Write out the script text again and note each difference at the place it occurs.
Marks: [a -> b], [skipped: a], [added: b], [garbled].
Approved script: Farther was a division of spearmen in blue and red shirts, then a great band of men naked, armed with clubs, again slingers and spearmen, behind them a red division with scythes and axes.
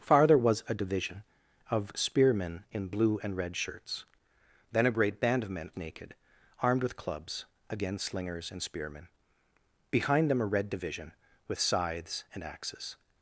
Farther was a division of spearmen in blue and red shirts, then a great band of men naked, armed with clubs, again slingers and spearmen, behind them a red division with scythes and axes.